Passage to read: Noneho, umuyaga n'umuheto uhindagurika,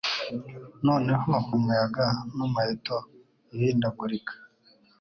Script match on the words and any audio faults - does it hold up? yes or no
yes